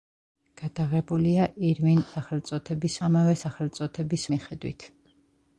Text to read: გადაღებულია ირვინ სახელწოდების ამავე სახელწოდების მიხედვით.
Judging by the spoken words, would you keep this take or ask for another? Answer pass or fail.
pass